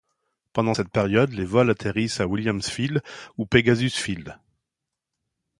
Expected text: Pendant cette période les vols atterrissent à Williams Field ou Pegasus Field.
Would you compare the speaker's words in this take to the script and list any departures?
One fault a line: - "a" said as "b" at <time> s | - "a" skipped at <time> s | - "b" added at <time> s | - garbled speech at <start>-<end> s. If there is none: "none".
none